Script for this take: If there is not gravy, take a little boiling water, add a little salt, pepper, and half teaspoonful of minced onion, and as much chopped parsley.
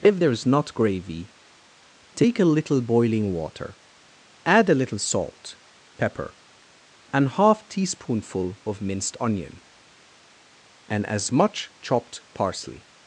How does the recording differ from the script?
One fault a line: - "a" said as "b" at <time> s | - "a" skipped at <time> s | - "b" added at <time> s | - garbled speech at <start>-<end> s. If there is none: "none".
none